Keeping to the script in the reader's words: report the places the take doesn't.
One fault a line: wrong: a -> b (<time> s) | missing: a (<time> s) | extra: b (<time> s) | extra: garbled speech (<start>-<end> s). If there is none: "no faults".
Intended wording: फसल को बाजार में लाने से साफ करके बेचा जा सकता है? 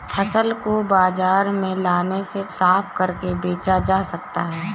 no faults